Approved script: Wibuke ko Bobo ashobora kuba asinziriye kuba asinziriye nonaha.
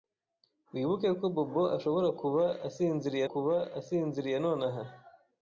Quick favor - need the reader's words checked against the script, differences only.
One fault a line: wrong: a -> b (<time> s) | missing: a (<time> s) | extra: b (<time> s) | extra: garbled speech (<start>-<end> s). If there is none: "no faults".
no faults